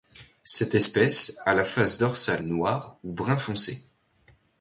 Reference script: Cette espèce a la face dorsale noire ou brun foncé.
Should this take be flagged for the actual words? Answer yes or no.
no